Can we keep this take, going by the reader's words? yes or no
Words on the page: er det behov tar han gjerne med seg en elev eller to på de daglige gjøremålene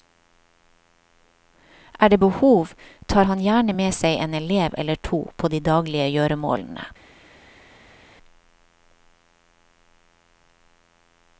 yes